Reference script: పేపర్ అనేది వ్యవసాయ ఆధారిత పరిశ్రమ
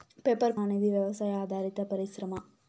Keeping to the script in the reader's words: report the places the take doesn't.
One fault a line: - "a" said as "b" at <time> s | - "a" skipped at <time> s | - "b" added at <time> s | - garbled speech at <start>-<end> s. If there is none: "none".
none